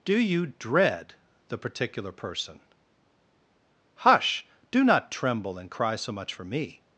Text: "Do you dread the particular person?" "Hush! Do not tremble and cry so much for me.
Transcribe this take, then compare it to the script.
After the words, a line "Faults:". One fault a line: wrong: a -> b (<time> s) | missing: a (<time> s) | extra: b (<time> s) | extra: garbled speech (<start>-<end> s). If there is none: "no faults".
"Do you dread the particular person?" "Hush! Do not tremble and cry so much for me.
Faults:
no faults